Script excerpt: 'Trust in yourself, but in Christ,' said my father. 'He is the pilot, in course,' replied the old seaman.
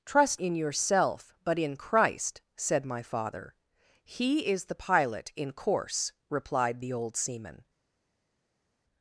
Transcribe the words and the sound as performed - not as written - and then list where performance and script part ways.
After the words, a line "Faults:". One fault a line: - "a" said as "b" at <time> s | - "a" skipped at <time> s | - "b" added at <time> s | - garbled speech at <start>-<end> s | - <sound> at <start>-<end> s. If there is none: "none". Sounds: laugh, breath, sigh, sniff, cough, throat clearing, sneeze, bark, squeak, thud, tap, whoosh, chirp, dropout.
'Trust in yourself, but in Christ,' said my father. 'He is the pilot, in course,' replied the old seaman.
Faults:
none